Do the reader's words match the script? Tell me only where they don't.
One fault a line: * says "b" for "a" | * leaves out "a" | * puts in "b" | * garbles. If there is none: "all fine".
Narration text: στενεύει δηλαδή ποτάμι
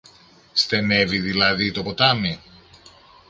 * puts in "το"